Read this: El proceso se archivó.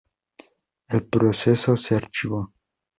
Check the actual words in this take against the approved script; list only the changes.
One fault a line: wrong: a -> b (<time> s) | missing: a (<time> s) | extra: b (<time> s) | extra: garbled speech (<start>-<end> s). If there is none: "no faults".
no faults